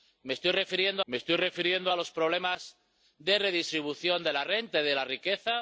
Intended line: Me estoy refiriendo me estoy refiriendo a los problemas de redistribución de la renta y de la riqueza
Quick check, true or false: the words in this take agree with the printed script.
true